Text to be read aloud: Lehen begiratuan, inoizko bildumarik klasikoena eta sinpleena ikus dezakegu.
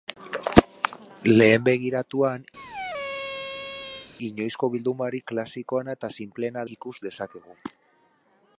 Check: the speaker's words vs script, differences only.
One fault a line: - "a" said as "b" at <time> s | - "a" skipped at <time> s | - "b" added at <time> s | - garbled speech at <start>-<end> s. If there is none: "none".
none